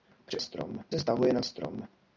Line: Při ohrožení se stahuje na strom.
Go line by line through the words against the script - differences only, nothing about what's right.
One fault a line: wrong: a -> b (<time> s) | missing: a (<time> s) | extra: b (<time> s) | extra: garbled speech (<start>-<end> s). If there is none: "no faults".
wrong: ohrožení -> strom (0.4 s)